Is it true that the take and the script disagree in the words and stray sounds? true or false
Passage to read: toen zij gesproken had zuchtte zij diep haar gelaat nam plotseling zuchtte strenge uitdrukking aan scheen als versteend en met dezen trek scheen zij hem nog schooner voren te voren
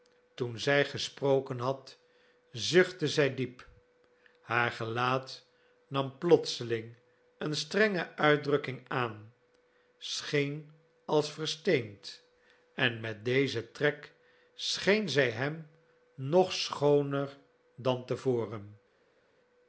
true